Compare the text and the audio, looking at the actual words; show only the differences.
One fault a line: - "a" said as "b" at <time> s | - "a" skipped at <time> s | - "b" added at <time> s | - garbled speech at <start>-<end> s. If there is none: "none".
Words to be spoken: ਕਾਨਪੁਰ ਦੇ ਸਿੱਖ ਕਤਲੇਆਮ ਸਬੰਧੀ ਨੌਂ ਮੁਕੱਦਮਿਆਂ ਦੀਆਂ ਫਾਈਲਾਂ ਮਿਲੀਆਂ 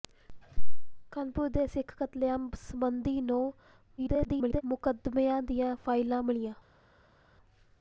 - garbled speech at 4.0-4.6 s